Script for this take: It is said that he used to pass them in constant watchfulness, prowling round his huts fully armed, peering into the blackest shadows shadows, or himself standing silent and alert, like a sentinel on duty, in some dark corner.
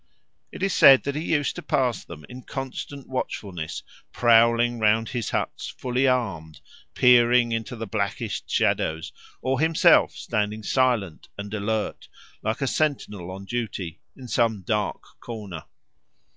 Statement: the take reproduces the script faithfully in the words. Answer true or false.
false